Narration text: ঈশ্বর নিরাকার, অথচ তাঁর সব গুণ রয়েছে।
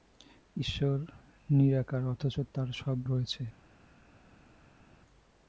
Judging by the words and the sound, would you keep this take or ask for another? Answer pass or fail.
fail